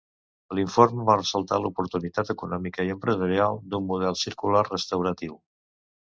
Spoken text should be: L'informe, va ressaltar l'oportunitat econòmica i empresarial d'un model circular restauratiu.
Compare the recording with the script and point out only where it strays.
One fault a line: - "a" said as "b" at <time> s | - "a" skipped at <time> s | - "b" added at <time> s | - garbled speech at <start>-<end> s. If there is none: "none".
none